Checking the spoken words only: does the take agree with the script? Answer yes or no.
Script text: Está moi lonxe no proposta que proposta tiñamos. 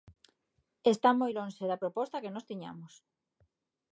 no